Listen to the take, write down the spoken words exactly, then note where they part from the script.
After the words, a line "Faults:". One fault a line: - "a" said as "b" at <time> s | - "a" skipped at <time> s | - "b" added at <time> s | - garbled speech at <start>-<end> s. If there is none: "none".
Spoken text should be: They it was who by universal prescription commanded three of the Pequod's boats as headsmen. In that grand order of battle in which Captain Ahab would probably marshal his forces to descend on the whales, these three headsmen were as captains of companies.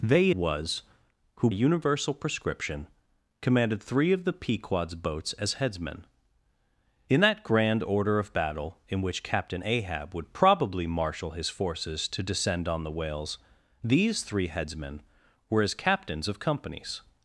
They was who universal prescription commanded three of the Pequod's boats as headsmen. In that grand order of battle in which Captain Ahab would probably marshal his forces to descend on the whales, these three headsmen were as captains of companies.
Faults:
- "it" skipped at 0.3 s
- "by" skipped at 1.5 s